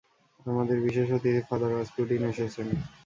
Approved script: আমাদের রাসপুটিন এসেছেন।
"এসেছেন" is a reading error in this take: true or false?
false